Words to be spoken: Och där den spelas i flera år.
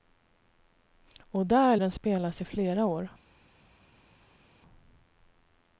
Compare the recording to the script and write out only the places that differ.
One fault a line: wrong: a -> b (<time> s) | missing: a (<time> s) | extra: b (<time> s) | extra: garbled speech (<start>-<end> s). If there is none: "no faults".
no faults